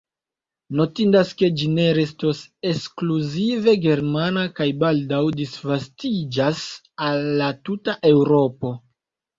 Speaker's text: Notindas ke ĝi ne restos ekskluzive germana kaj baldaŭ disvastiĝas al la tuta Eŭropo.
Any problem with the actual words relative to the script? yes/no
no